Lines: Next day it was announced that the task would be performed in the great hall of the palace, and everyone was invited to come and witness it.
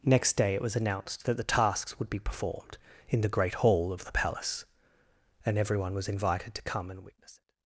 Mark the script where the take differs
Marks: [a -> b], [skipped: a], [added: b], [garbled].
Next day it was announced that the [task -> tasks] would be performed in the great hall of the palace, and everyone was invited to come and witness it.